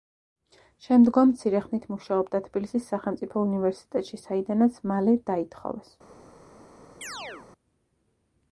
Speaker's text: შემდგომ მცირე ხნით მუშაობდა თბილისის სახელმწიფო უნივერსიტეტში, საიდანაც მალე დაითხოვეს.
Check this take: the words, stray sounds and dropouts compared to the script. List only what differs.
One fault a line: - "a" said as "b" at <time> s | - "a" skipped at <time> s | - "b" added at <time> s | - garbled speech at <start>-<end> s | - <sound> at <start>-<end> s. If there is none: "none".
- chirp at 7.0-7.5 s